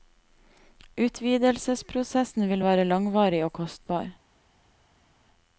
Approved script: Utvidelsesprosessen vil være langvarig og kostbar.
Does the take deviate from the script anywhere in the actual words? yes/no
no